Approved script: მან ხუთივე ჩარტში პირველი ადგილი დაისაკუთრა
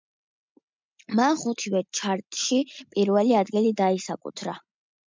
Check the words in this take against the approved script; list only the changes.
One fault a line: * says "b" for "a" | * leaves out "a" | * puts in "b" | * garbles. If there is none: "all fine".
all fine